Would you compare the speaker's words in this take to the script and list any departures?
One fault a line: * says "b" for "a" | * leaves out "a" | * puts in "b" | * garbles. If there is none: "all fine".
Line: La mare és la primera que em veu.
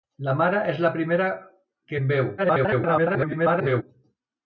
* garbles